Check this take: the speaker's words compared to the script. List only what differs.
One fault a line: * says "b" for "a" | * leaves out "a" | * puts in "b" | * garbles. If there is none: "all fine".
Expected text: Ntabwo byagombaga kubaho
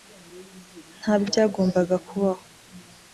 all fine